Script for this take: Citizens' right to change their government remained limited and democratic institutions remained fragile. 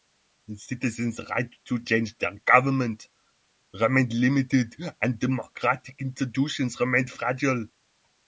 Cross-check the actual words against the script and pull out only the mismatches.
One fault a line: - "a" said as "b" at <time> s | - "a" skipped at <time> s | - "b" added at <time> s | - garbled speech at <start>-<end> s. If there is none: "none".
none